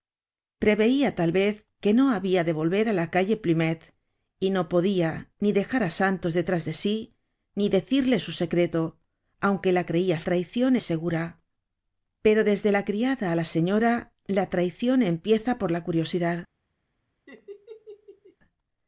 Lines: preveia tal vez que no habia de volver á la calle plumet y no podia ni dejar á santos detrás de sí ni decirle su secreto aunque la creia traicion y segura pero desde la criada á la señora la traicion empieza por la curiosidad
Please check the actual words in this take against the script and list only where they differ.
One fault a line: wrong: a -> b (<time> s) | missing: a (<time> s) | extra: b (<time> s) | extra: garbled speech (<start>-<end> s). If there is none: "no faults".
no faults